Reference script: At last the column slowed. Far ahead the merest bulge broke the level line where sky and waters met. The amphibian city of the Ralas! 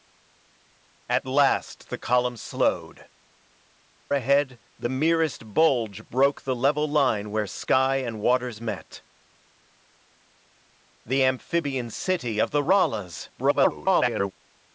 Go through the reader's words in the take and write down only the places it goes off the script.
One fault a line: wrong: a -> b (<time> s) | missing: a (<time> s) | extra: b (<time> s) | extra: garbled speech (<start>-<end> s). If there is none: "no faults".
missing: Far (3.1 s)
extra: garbled speech (13.4-14.3 s)